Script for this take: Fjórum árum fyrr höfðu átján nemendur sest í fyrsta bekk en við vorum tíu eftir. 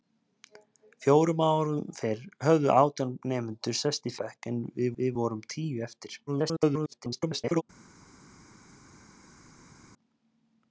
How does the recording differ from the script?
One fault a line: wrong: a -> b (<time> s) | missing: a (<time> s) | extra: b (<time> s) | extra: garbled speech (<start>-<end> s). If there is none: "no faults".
missing: fyrsta (4.2 s)
extra: við (5.0 s)
extra: garbled speech (6.3-7.6 s)